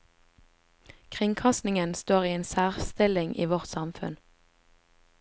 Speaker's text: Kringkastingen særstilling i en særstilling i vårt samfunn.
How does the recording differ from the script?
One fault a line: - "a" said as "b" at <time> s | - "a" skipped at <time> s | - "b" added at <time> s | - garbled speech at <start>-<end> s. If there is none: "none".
- "særstilling" said as "står" at 1.9 s